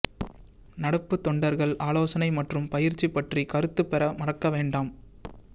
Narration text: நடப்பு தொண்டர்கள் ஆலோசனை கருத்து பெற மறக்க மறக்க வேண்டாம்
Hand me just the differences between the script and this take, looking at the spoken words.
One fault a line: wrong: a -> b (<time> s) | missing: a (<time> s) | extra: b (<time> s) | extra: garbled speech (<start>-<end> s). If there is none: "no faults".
extra: மற்றும் பயிற்சி பற்றி (2.4 s)
missing: மறக்க (4.5 s)